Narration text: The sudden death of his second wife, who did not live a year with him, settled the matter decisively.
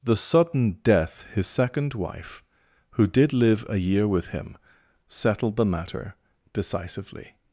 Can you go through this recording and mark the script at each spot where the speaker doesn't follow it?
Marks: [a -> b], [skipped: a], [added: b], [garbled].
The sudden death [skipped: of] his second wife, who did [skipped: not] live a year with him, settled the matter decisively.